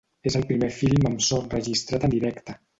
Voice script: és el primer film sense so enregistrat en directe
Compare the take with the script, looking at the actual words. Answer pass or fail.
fail